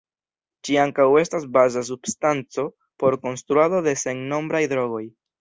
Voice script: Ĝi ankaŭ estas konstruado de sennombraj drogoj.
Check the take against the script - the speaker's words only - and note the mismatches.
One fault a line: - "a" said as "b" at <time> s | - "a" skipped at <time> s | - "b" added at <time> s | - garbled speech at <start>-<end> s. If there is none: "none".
- "baza substanco por" added at 1.6 s